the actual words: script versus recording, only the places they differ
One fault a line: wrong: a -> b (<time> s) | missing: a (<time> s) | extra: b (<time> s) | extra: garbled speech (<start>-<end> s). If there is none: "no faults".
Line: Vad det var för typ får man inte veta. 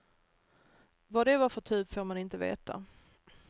no faults